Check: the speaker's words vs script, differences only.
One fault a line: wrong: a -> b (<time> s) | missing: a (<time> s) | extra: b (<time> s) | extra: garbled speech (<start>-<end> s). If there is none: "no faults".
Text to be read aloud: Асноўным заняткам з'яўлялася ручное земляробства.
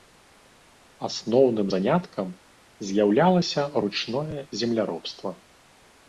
no faults